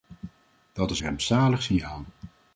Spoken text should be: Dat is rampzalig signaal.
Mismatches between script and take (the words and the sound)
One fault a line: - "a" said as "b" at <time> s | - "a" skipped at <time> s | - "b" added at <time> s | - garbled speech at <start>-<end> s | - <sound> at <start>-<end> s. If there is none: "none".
none